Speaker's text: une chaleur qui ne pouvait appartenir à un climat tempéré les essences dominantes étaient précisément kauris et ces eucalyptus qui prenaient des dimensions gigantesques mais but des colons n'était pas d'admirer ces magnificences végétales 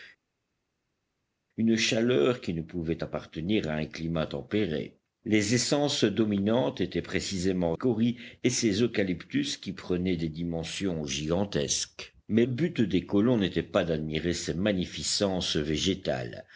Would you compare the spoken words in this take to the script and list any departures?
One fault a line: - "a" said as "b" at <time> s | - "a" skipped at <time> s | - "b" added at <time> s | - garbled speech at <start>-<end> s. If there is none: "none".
none